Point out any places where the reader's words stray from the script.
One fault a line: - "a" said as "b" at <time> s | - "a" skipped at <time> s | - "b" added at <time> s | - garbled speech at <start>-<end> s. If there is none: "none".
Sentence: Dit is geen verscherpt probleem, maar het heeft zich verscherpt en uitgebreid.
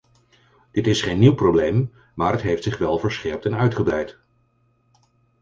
- "verscherpt" said as "nieuw" at 1.2 s
- "wel" added at 2.8 s